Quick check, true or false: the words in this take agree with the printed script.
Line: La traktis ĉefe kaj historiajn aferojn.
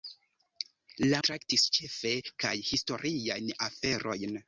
true